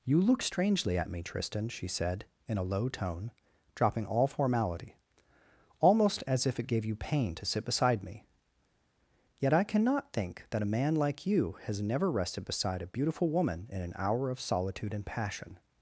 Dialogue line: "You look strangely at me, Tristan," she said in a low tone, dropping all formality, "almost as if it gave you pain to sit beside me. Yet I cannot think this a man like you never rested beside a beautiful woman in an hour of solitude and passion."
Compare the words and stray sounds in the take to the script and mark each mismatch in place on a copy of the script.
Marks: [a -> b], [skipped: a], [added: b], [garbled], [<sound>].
"You look strangely at me, Tristan," she said in a low tone, dropping all formality, "almost as if it gave you pain to sit beside me. Yet I cannot think [this -> that] a man like you [added: has] never rested beside a beautiful woman in an hour of solitude and passion."